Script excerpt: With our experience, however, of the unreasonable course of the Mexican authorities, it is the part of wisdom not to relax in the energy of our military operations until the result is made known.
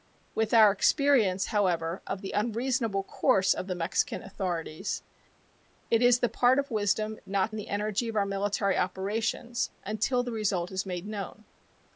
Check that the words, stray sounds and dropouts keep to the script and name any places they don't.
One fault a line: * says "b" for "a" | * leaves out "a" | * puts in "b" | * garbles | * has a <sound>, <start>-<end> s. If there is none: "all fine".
* leaves out "to relax in"